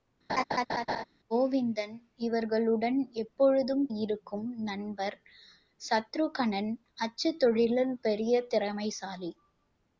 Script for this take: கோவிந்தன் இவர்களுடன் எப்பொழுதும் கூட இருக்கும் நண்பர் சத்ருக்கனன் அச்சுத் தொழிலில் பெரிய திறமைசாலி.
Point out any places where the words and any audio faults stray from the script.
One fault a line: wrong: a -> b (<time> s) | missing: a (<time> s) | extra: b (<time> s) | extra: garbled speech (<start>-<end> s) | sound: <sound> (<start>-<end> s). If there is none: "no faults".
sound: laugh (0.3-1.0 s)
missing: கூட (3.9 s)